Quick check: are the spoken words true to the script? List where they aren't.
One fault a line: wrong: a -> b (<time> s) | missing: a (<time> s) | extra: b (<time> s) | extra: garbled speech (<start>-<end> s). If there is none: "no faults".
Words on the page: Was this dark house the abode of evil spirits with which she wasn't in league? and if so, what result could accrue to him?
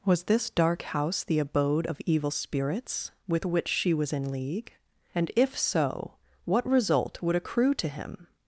wrong: wasn't -> was (3.9 s)
wrong: could -> would (7.2 s)